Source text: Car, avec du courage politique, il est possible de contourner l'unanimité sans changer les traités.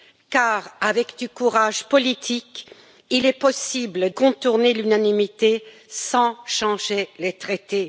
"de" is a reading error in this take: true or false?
true